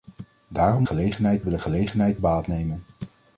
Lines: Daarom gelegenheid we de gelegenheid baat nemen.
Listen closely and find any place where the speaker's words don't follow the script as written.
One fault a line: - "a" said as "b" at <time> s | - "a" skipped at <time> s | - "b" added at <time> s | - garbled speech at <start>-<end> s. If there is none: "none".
none